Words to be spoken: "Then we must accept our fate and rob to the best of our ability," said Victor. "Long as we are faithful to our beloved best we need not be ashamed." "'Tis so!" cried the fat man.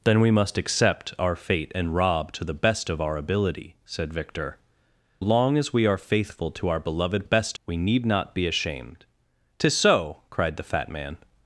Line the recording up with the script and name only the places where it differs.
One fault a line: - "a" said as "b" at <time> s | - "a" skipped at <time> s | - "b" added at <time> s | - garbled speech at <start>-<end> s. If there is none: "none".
none